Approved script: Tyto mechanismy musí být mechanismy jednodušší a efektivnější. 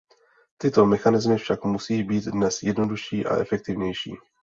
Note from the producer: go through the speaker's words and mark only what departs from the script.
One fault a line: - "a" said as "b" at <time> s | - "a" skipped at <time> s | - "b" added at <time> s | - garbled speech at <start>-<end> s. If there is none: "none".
- "však" added at 1.4 s
- "mechanismy" said as "dnes" at 2.2 s